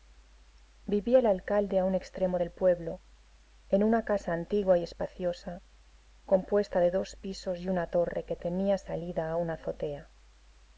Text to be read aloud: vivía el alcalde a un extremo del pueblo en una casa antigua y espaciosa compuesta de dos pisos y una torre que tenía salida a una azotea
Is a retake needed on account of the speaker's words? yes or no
no